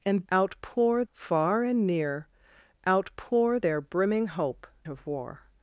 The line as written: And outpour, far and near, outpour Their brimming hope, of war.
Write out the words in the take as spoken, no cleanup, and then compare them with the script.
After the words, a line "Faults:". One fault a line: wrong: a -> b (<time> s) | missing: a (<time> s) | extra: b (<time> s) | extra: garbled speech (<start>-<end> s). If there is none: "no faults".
And outpour, far and near, outpour Their brimming hope, of war.
Faults:
no faults